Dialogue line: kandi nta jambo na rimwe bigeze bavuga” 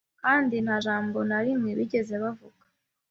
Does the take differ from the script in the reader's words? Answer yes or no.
no